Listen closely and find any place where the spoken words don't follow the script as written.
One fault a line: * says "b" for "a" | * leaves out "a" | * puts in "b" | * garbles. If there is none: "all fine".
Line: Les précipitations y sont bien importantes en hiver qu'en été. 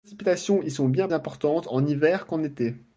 all fine